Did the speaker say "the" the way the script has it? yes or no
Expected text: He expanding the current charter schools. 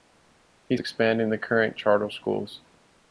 yes